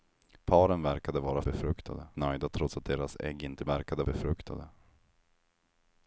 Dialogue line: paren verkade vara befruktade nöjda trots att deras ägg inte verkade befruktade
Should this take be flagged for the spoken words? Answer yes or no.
no